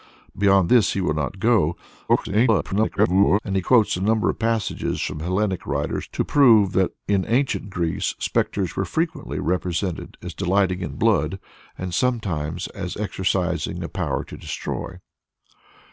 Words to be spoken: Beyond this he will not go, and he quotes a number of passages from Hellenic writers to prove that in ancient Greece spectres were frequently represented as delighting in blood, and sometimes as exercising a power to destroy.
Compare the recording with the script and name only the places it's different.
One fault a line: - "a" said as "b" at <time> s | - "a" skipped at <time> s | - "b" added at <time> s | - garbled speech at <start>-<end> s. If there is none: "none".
- garbled speech at 2.1-3.4 s